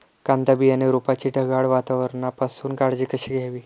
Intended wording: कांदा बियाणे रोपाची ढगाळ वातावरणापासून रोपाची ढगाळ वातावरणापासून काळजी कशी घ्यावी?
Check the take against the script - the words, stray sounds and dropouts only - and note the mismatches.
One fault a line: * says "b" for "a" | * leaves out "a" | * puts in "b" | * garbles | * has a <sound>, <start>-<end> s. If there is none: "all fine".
* leaves out "रोपाची ढगाळ वातावरणापासून"